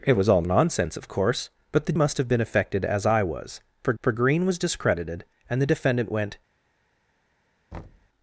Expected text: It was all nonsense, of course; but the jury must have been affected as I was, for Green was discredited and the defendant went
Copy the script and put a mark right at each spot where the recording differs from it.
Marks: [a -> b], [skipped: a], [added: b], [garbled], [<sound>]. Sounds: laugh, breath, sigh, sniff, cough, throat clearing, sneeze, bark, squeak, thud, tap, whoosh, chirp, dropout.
It was all nonsense, of course; but the [skipped: jury] must have been affected as I was, for [added: for] Green was discredited and the defendant went [thud]